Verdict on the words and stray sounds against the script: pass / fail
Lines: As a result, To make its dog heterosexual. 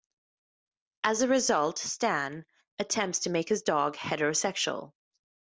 fail